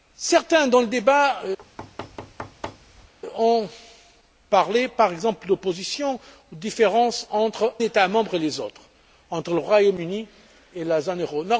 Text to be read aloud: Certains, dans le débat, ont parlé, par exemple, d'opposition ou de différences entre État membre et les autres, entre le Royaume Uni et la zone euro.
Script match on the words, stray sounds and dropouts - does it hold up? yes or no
no